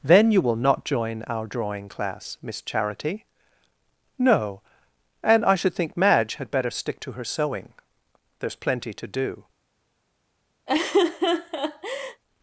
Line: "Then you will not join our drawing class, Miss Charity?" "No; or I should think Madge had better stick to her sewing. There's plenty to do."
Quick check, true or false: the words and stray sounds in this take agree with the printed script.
false